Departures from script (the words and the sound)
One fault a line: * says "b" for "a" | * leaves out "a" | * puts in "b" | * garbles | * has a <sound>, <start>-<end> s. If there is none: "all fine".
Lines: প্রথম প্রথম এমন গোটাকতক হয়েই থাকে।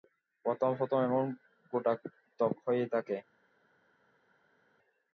all fine